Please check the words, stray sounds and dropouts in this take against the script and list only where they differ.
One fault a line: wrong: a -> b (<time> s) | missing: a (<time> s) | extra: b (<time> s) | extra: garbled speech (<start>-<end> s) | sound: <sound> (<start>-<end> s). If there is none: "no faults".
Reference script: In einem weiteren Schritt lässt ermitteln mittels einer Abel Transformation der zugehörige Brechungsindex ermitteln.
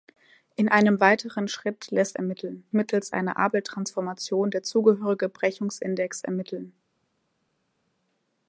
no faults